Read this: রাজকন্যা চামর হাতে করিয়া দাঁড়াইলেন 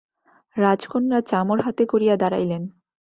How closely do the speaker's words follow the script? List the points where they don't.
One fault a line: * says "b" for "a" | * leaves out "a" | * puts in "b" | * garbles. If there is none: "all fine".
all fine